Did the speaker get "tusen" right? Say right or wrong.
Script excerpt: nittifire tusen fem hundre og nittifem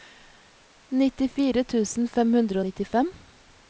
right